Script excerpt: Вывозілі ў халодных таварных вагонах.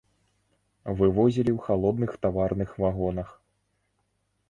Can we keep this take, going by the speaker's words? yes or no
yes